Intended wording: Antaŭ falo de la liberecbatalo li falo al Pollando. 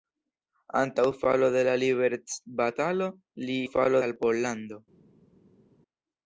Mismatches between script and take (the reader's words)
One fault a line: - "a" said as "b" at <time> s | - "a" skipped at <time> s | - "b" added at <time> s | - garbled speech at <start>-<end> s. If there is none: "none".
none